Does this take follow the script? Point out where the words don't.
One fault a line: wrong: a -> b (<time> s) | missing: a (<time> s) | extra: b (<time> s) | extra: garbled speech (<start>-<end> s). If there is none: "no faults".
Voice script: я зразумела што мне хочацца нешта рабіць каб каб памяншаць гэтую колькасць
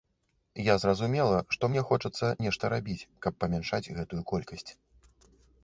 missing: каб (3.4 s)